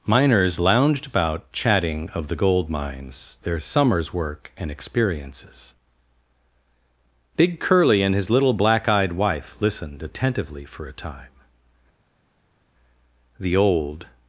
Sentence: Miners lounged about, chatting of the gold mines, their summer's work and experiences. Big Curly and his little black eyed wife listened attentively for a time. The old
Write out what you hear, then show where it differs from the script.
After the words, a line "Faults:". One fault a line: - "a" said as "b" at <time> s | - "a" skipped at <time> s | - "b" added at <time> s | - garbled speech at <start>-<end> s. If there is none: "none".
Miners lounged about, chatting of the gold mines, their summer's work and experiences. Big Curly and his little black eyed wife listened attentively for a time. The old
Faults:
none